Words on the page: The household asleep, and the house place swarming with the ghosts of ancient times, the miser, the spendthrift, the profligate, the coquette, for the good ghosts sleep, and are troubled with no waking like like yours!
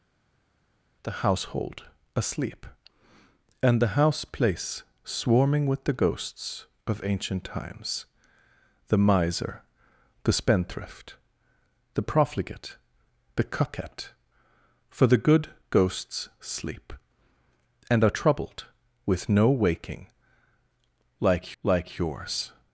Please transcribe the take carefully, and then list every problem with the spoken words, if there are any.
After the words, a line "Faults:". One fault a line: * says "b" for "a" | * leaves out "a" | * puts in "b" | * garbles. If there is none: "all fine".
The household asleep, and the house place swarming with the ghosts of ancient times, the miser, the spendthrift, the profligate, the coquette, for the good ghosts sleep, and are troubled with no waking like like yours!
Faults:
all fine